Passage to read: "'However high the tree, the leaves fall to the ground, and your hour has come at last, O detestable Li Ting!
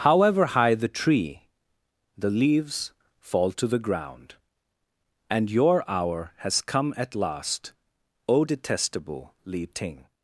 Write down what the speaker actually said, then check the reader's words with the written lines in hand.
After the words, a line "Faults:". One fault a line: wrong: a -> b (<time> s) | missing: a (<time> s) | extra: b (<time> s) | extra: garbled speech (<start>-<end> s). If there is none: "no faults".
"'However high the tree, the leaves fall to the ground, and your hour has come at last, O detestable Li Ting!
Faults:
no faults